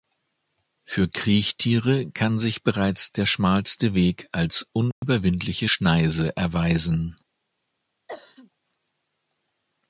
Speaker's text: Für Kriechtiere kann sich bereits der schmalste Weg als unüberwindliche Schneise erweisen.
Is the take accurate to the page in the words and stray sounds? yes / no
no